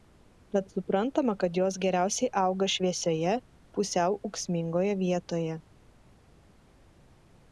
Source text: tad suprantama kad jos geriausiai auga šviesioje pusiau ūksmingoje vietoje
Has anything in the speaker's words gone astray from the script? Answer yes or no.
no